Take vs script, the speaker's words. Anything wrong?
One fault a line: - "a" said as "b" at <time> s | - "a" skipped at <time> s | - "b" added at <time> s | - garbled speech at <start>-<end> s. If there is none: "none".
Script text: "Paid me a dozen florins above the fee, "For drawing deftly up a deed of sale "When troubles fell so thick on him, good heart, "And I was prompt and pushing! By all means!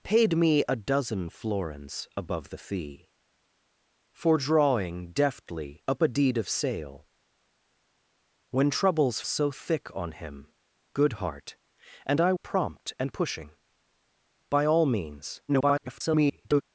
- "fell" skipped at 9.2 s
- "was" skipped at 12.3 s
- garbled speech at 15.5-16.6 s